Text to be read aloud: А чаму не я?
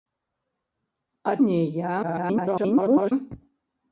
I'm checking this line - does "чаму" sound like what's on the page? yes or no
no